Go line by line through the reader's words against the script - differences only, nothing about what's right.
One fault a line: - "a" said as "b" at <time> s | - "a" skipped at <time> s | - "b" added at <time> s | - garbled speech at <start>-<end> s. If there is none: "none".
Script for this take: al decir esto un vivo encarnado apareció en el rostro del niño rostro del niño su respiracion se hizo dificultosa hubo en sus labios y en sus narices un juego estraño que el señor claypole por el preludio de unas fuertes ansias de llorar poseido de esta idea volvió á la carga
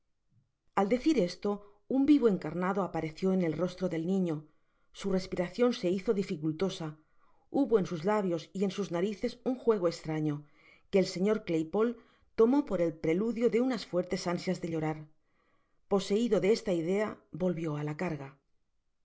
- "rostro del niño" skipped at 4.5 s
- "tomó" added at 12.3 s